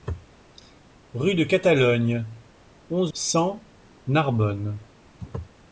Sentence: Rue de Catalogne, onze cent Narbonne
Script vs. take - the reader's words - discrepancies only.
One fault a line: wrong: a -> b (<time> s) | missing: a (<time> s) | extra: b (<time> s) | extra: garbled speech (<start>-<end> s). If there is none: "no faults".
no faults